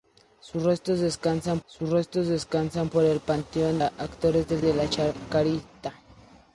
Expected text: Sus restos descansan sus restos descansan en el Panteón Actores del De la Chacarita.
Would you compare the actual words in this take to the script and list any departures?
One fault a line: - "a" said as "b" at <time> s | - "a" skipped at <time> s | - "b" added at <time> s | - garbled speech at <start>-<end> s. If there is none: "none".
none